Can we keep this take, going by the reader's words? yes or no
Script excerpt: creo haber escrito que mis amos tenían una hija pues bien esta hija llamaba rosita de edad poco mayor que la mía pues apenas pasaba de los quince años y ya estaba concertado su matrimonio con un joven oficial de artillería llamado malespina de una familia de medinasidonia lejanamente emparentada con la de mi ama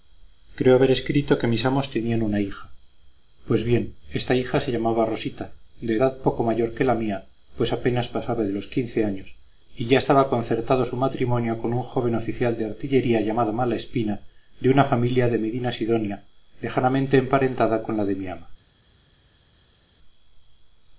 no